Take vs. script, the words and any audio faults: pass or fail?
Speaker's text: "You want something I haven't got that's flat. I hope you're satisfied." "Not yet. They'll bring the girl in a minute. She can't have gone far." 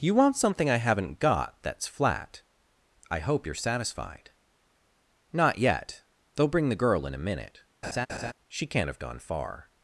fail